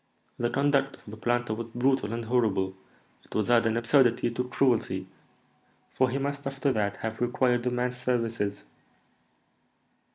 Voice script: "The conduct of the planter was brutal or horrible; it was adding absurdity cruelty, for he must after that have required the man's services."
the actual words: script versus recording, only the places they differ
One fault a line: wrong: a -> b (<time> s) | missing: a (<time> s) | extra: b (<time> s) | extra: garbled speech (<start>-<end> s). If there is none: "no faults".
wrong: or -> and (2.1 s)
extra: to (4.3 s)